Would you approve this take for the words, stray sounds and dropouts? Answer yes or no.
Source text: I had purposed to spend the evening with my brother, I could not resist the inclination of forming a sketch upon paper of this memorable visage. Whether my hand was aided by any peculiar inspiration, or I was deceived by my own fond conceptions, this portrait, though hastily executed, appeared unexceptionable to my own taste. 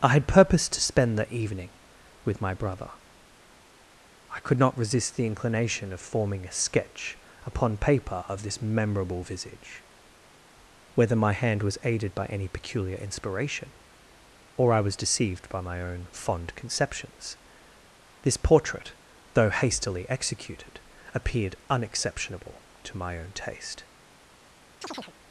no